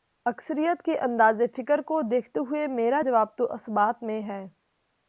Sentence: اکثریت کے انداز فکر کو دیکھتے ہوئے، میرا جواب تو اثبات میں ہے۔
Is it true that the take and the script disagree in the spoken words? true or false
false